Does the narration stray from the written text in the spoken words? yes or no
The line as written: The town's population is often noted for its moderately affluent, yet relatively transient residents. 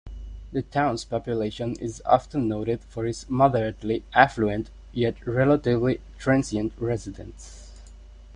no